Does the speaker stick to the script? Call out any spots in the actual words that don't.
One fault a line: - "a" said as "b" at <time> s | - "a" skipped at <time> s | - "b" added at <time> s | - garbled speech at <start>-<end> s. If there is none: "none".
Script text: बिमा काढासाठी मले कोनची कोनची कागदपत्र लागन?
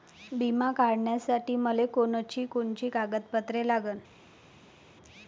none